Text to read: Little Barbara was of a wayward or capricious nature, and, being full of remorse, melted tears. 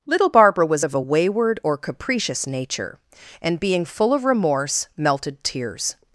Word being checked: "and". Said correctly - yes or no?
yes